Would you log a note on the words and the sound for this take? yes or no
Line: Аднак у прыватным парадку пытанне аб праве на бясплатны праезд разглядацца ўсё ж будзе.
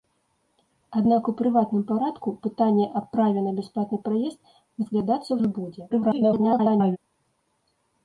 yes